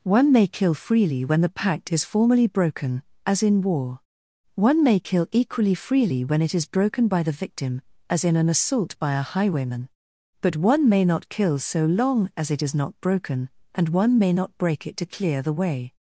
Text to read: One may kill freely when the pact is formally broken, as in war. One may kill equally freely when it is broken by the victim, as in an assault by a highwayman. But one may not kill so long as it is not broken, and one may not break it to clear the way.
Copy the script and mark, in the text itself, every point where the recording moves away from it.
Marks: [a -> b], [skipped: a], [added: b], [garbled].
One may kill freely when the pact is formally broken, as in war. One may kill equally freely when it is broken by the victim, as in an assault by a highwayman. But one may not kill so long as it is not broken, and one may not break it to clear the way.